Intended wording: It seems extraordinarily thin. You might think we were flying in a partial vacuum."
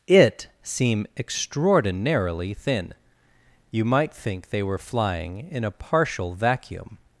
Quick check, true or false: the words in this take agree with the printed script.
false